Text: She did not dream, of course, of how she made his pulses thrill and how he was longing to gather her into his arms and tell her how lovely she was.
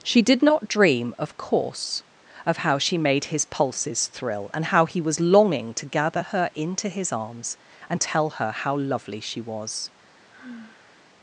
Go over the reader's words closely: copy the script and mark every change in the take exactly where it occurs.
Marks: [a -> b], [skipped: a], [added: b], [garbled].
She did not dream, of course, of how she made his pulses thrill and how he was longing to gather her into his arms and tell her how lovely she was.